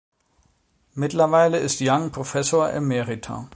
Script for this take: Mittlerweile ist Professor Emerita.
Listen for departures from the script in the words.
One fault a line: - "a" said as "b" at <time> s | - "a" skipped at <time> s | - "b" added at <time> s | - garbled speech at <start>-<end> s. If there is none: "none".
- "Young" added at 1.8 s